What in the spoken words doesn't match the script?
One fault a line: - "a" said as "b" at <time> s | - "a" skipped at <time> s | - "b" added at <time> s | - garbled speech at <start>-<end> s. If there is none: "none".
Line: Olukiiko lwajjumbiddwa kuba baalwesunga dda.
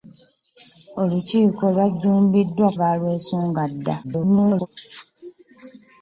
- "kuba" skipped at 2.7 s
- garbled speech at 4.0-4.7 s